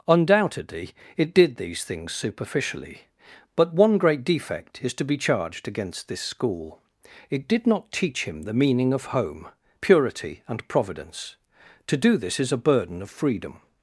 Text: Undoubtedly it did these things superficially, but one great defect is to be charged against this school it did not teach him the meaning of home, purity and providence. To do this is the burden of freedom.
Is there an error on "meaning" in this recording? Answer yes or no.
no